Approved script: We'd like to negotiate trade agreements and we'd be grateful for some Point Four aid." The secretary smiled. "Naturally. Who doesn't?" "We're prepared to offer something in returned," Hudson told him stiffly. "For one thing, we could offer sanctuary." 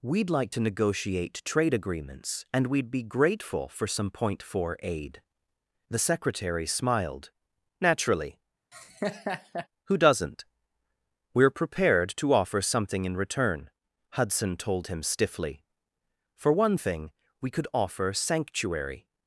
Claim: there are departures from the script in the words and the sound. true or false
true